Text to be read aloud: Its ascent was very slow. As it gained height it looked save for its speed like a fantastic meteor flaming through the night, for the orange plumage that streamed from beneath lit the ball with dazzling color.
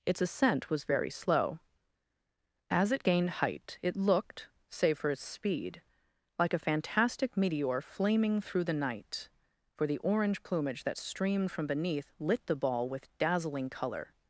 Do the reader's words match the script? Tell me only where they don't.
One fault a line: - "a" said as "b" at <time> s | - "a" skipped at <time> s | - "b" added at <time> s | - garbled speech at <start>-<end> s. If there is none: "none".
none